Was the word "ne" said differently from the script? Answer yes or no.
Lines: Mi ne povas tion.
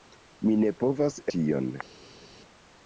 no